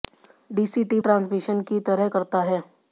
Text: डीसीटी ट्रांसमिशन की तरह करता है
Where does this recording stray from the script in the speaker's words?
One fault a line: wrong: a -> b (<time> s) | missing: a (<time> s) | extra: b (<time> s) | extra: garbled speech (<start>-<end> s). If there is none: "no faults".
no faults